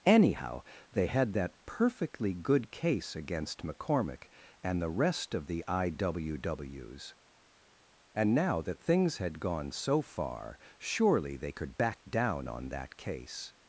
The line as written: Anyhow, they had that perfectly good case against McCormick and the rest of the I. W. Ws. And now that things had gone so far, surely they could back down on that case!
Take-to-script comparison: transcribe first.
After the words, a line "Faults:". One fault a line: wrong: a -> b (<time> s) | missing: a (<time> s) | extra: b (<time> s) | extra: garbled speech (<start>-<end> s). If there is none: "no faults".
Anyhow, they had that perfectly good case against McCormick and the rest of the I. W. Ws. And now that things had gone so far, surely they could back down on that case!
Faults:
no faults